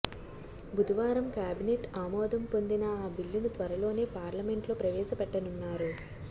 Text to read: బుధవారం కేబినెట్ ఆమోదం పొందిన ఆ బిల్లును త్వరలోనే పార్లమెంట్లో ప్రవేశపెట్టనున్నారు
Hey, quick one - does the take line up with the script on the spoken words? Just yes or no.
yes